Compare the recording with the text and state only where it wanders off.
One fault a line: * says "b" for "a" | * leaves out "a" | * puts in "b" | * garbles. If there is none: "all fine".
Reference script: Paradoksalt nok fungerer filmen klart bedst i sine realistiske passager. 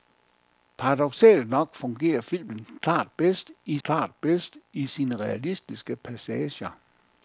* puts in "klart bedst i"